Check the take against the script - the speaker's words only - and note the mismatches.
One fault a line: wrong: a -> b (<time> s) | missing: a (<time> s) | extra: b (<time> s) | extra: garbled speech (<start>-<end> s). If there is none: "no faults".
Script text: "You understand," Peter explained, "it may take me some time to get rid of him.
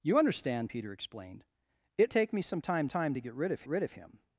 missing: may (2.1 s)
extra: time (2.8 s)
extra: rid of (3.7 s)